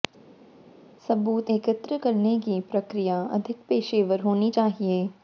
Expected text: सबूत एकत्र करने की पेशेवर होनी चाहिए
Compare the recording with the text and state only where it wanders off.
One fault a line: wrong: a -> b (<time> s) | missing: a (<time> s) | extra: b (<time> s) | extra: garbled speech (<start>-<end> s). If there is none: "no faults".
extra: प्रक्रिया अधिक (2.7 s)